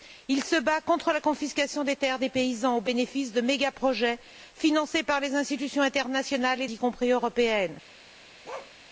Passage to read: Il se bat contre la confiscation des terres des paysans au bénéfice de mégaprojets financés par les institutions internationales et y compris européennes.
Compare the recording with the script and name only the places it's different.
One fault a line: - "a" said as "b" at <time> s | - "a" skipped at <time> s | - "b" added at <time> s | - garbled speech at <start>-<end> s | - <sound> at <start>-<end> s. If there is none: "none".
- bark at 8.4-8.7 s